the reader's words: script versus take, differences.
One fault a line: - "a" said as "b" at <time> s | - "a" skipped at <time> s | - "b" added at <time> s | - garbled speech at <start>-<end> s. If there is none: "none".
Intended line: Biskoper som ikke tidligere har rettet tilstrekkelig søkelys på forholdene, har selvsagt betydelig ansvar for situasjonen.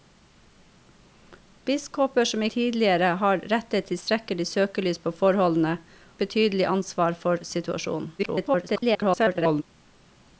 - "ikke" skipped at 2.5 s
- "har selvsagt" skipped at 5.7 s
- garbled speech at 8.2-9.6 s